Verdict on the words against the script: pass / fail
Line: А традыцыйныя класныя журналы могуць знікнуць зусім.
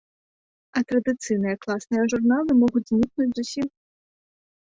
pass